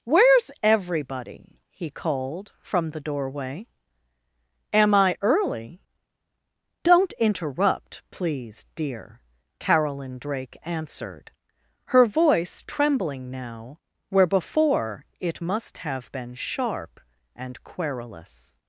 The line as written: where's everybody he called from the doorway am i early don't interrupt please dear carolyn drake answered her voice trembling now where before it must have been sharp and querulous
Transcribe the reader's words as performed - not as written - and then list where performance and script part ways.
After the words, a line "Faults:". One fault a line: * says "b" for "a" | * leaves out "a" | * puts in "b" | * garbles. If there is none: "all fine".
where's everybody he called from the doorway am i early don't interrupt please dear carolyn drake answered her voice trembling now where before it must have been sharp and querulous
Faults:
all fine